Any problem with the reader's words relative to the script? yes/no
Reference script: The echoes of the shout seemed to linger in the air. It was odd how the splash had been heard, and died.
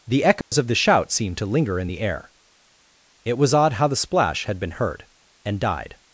no